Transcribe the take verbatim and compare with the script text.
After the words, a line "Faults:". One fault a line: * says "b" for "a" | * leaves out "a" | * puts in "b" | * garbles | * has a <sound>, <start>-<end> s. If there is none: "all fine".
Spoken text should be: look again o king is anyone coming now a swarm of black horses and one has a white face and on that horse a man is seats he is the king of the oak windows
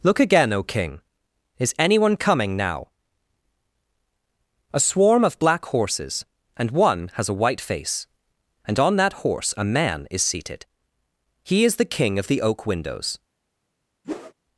look again o king is anyone coming now a swarm of black horses and one has a white face and on that horse a man is seated he is the king of the oak windows
Faults:
* says "seated" for "seats"
* has a whoosh, 14.0-14.3 s